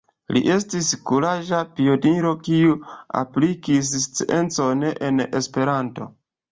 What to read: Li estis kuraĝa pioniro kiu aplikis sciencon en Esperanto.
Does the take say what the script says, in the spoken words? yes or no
yes